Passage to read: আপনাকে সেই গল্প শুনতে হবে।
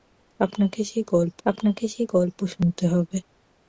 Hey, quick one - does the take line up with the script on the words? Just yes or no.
no